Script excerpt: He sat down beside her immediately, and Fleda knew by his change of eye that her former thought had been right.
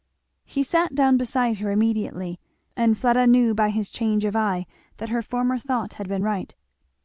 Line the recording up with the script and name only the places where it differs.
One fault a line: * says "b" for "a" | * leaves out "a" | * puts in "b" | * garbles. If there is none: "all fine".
all fine